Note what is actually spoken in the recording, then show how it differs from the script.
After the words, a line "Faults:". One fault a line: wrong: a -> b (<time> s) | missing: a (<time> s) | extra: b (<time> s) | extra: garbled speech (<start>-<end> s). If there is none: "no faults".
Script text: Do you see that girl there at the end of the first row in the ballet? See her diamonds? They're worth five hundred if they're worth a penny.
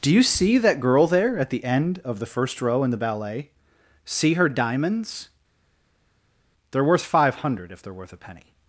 Do you see that girl there at the end of the first row in the ballet? See her diamonds? They're worth five hundred if they're worth a penny.
Faults:
no faults